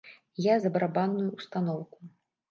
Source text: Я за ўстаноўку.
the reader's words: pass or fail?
fail